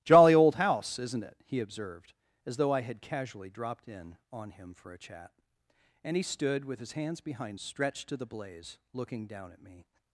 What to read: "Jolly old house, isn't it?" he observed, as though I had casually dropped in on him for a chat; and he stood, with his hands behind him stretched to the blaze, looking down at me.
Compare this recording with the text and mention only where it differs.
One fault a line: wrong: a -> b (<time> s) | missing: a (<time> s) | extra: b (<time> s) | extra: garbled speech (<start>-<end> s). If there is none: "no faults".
missing: him (7.6 s)